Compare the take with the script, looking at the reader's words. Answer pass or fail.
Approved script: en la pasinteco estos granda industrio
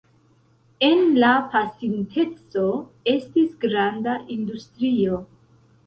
fail